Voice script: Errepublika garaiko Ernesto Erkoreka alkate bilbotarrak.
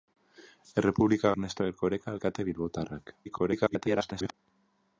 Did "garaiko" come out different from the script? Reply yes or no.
yes